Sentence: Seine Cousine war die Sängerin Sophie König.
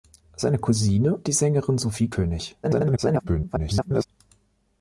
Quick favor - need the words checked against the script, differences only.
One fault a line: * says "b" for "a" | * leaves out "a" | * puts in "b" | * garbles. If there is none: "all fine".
* leaves out "war"
* garbles